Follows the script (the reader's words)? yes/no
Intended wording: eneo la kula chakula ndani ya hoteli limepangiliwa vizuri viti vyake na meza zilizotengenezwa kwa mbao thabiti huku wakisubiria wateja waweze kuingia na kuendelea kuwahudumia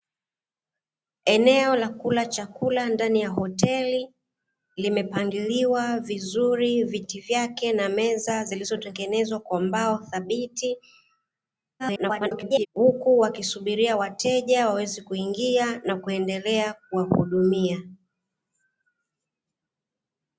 no